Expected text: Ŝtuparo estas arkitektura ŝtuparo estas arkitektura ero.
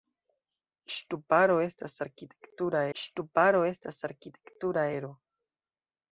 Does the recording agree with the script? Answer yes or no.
yes